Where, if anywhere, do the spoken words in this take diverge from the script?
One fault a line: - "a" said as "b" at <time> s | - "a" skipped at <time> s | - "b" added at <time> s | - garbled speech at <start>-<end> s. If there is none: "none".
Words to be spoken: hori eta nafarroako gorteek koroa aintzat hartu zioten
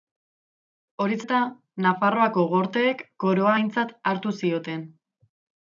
none